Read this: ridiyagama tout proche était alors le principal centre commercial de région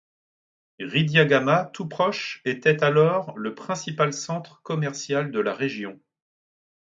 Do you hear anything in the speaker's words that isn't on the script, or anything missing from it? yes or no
yes